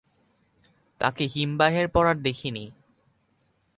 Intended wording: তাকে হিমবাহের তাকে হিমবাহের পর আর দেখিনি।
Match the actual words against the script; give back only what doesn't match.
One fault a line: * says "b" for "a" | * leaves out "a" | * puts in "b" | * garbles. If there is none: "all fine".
* leaves out "তাকে হিমবাহের"